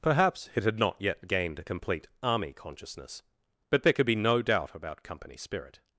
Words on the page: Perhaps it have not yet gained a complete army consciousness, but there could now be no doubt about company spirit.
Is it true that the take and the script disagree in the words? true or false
true